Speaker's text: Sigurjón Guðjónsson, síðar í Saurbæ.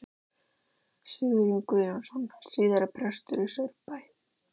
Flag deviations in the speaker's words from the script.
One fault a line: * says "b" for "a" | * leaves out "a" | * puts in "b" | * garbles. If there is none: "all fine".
* puts in "prestur"